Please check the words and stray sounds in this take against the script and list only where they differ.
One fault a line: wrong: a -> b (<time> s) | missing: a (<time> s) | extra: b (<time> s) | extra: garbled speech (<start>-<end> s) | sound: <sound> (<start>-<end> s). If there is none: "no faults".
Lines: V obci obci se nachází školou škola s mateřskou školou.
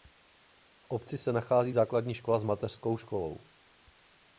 missing: obci (1.2 s)
wrong: školou -> základní (1.7 s)